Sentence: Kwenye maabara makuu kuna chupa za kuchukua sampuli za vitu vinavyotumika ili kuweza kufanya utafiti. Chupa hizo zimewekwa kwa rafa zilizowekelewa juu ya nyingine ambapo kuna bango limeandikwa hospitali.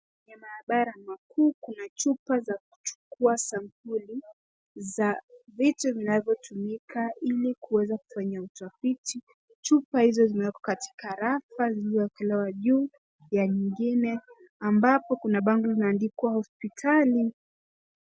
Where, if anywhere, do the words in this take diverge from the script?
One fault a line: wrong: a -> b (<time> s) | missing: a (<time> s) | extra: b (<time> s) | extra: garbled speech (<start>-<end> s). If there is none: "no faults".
wrong: kwa -> katika (10.6 s)